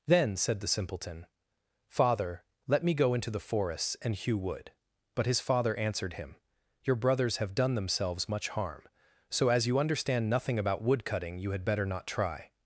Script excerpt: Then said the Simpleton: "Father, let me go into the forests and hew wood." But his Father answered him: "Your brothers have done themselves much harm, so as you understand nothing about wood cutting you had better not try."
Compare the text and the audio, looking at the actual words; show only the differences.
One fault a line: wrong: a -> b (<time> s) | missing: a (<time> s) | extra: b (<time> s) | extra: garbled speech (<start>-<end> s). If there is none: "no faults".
no faults